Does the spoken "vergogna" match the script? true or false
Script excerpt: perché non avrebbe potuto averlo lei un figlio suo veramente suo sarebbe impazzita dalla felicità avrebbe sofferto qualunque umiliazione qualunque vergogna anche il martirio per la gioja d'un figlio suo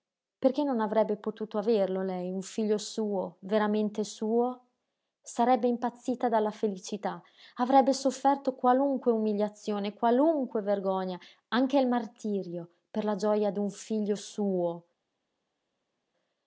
true